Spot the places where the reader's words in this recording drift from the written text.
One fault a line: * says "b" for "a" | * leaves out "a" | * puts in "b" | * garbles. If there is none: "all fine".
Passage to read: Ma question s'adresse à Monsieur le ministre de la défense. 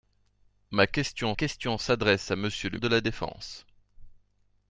* puts in "question"
* leaves out "ministre"